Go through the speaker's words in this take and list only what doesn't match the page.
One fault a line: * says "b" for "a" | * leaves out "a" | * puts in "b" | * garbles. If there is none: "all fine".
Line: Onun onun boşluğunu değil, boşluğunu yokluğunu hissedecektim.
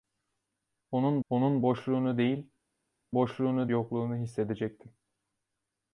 all fine